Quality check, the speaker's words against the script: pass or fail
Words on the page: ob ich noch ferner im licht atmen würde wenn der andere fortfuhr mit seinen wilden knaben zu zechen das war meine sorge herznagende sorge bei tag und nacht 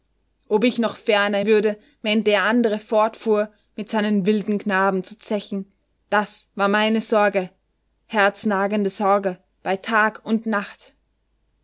fail